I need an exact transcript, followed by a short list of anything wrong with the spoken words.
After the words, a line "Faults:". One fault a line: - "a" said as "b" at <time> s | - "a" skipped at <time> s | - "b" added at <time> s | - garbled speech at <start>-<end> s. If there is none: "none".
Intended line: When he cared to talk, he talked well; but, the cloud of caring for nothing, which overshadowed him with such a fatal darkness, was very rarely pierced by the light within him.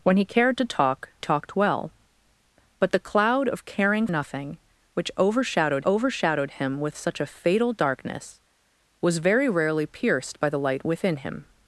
When he cared to talk, talked well; but, the cloud of caring nothing, which overshadowed overshadowed him with such a fatal darkness, was very rarely pierced by the light within him.
Faults:
- "he" skipped at 1.1 s
- "for" skipped at 4.1 s
- "overshadowed" added at 5.8 s